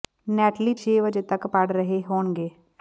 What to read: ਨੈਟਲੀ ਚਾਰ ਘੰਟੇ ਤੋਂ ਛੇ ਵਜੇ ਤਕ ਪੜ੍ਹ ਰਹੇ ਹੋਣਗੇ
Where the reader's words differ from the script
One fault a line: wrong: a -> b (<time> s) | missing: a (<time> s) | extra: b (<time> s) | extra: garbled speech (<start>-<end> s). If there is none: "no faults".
missing: ਚਾਰ ਘੰਟੇ ਤੋਂ (0.7 s)